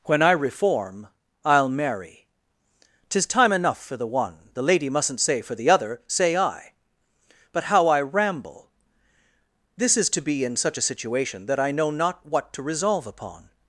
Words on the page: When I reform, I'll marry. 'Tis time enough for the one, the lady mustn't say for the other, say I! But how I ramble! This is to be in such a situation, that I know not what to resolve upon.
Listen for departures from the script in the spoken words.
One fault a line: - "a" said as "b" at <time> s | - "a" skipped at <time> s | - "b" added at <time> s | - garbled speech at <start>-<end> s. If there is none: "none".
none